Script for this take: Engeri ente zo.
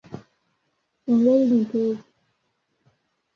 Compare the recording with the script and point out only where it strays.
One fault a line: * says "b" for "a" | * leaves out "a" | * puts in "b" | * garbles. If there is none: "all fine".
all fine